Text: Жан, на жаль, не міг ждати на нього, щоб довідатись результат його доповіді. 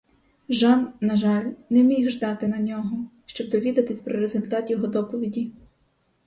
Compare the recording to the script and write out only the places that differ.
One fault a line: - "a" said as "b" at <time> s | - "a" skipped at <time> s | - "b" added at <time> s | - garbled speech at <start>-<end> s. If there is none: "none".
- "про" added at 4.0 s